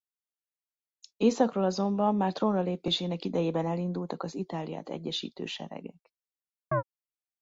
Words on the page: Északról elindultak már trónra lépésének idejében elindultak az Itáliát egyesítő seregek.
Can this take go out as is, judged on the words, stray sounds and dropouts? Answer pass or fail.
fail